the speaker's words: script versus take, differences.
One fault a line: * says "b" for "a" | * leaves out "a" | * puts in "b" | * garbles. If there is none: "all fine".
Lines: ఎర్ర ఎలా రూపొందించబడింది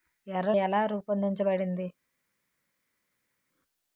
all fine